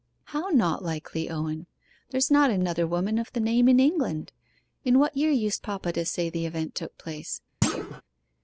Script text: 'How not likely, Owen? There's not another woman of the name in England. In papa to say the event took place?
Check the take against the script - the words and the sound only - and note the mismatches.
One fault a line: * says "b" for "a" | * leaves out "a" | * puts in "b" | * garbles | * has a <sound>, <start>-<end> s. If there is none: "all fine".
* puts in "what year used"
* has a thud, 7.6-8.0 s